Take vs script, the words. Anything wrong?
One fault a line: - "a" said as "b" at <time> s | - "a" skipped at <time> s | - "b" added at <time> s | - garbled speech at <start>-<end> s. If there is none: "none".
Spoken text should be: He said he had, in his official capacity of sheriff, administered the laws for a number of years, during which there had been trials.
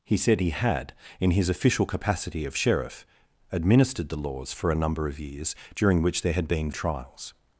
none